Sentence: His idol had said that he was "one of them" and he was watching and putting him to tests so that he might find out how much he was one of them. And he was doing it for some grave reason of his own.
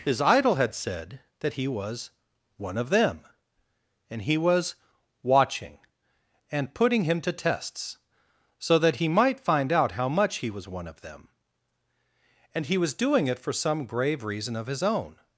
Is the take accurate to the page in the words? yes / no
yes